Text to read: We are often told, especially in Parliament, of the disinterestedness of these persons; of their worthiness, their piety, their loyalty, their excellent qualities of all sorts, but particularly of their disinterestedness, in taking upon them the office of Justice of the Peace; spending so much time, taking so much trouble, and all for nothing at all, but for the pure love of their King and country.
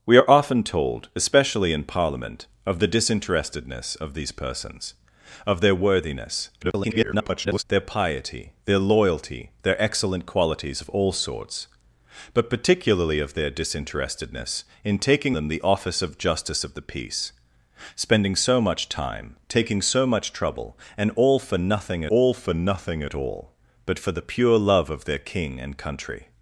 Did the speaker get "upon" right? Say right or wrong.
wrong